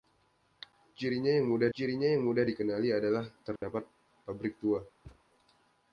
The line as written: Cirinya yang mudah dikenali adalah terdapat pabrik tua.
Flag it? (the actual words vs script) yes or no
yes